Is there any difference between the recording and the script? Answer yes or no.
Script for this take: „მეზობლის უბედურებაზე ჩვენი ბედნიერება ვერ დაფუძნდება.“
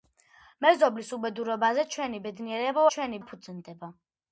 yes